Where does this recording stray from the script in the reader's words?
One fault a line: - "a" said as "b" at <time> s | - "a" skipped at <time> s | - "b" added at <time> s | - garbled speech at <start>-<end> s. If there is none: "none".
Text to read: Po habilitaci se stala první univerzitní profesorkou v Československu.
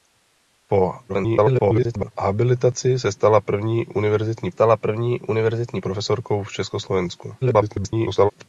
- garbled speech at 1.1-2.1 s
- "stala první univerzitní" added at 4.5 s
- garbled speech at 7.4-8.3 s